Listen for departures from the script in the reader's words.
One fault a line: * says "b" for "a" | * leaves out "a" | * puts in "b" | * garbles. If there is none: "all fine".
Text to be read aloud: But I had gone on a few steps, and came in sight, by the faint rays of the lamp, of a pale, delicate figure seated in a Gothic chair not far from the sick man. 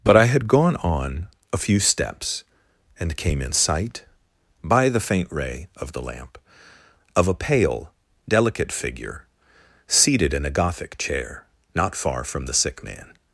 * says "ray" for "rays"